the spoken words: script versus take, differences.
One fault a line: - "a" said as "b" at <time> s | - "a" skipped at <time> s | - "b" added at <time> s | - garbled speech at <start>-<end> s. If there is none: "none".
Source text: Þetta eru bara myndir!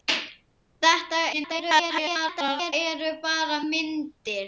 - garbled speech at 1.3-2.7 s